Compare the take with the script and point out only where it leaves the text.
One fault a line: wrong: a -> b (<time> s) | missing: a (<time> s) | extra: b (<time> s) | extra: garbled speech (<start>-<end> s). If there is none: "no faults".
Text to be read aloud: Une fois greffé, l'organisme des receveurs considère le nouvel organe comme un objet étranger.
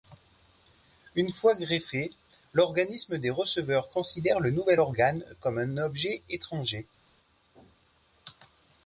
no faults